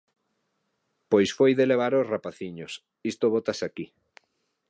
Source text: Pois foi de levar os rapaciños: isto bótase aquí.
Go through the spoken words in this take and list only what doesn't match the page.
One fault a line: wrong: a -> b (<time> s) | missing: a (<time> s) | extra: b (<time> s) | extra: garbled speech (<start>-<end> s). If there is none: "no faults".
no faults